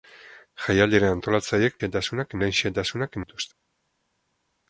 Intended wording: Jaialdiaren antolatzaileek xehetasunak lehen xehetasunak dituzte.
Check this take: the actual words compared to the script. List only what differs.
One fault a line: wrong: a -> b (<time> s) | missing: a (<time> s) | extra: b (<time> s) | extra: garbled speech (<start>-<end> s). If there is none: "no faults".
no faults